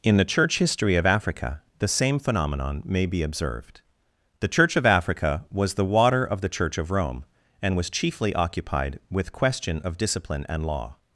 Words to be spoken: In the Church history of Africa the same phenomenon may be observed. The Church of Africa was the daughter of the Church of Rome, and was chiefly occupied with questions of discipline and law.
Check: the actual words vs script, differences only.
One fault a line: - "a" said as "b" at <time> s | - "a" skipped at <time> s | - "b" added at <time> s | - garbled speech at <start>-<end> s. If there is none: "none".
- "daughter" said as "water" at 5.8 s
- "questions" said as "question" at 9.3 s